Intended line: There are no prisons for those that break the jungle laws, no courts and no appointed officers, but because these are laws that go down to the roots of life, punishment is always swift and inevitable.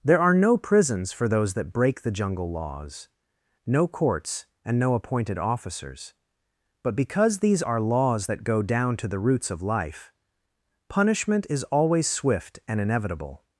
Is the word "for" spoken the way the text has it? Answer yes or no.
yes